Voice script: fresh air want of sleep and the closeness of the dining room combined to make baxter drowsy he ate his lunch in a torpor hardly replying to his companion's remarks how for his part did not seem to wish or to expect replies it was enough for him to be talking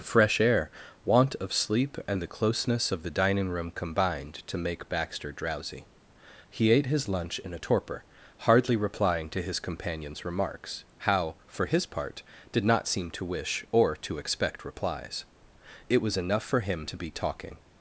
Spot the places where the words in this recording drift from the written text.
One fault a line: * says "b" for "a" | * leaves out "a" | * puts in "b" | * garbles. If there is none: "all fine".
all fine